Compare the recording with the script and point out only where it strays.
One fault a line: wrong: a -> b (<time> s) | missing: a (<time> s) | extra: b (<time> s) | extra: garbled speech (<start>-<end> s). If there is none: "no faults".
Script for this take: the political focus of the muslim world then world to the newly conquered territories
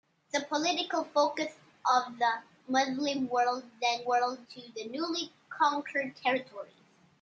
no faults